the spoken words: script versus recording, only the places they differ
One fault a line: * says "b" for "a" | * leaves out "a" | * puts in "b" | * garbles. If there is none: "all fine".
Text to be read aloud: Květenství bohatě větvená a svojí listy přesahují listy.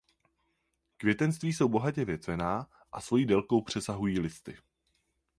* puts in "jsou"
* says "délkou" for "listy"